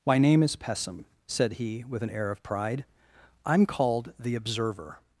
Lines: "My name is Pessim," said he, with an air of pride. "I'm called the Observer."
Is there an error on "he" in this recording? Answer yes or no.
no